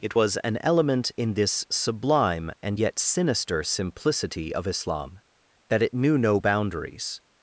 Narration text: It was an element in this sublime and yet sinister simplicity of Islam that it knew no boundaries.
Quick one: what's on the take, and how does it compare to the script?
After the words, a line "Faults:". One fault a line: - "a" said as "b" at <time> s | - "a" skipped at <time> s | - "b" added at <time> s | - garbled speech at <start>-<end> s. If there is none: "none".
It was an element in this sublime and yet sinister simplicity of Islam that it knew no boundaries.
Faults:
none